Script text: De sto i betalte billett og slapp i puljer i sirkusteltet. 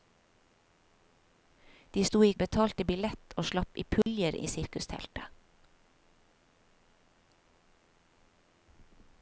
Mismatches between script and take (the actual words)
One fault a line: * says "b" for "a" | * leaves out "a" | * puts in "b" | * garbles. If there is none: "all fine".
all fine